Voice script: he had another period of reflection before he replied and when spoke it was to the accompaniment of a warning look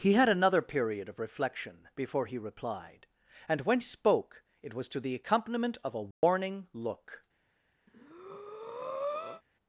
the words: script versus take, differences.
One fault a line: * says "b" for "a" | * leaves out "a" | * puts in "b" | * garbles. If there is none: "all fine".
all fine